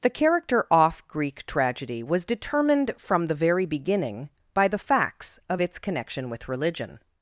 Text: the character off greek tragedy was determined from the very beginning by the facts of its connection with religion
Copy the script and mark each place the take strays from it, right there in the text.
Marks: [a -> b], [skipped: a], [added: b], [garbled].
the character off greek tragedy was determined from the very beginning by the facts of its connection with religion